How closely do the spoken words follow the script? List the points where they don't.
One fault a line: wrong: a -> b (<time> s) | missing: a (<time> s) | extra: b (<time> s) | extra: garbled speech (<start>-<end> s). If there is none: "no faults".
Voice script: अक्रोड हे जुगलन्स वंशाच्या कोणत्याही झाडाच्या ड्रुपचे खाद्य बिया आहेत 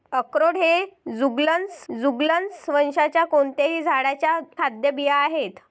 extra: जुगलन्स (1.9 s)
missing: ड्रुपचे (4.4 s)